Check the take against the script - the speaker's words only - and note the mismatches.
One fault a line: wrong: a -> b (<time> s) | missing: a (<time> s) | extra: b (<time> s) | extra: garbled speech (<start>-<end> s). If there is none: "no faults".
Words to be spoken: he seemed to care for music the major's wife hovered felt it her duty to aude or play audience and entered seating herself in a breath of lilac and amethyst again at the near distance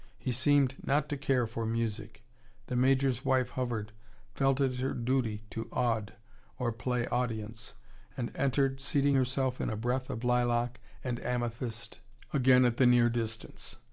extra: not (0.8 s)